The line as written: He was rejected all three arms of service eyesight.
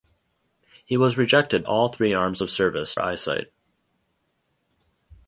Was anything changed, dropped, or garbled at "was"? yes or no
no